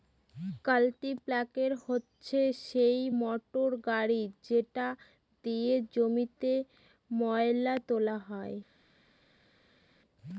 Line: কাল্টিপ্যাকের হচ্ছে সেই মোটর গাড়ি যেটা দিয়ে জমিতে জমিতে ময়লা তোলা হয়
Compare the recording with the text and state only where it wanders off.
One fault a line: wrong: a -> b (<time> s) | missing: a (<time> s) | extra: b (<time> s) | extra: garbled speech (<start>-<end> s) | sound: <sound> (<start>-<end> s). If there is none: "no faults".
missing: জমিতে (6.5 s)